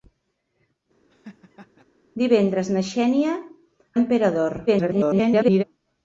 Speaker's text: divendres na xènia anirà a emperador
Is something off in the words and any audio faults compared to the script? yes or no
yes